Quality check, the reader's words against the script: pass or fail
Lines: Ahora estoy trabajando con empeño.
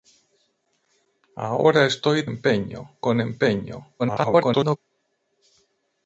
fail